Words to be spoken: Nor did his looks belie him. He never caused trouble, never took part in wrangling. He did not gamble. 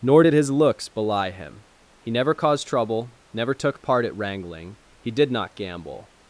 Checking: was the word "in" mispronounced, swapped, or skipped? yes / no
yes